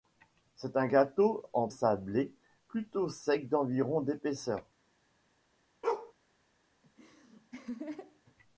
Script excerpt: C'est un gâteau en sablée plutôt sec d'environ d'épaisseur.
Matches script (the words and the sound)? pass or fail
fail